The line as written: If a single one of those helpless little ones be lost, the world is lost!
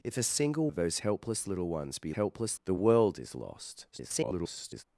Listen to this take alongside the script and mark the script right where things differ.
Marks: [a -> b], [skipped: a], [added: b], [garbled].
If a single [skipped: one] of those helpless little ones be [lost, -> helpless] the world is lost! [garbled]